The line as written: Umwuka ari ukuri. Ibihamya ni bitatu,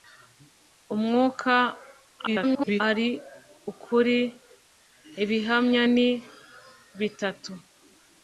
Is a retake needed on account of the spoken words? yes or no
yes